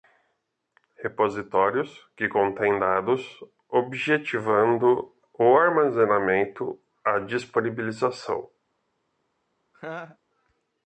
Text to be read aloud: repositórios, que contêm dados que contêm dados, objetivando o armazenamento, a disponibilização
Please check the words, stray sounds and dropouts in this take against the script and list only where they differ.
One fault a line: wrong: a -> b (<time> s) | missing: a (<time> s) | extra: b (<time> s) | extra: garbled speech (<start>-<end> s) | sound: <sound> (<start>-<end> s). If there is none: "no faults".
missing: que contêm dados (3.4 s)
sound: laugh (9.7-10.2 s)